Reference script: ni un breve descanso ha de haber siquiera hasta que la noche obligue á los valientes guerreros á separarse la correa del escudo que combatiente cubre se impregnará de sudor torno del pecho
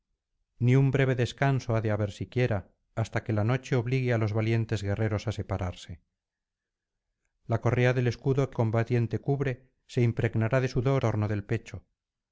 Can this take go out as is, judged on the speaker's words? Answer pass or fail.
pass